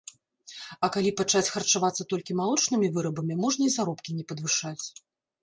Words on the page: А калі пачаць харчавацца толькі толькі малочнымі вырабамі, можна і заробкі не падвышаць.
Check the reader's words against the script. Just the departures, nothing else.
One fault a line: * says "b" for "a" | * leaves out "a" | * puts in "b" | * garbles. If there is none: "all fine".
* leaves out "толькі"